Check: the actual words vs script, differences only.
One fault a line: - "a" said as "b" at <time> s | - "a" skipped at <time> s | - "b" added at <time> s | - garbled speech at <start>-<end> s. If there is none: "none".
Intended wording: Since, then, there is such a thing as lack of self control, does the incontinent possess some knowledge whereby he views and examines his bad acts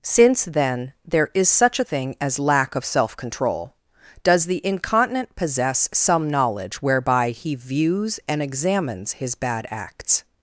none